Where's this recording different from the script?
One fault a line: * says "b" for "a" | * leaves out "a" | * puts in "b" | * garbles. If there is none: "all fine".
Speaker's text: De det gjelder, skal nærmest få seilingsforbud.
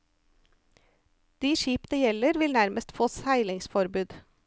* puts in "skip"
* says "vil" for "skal"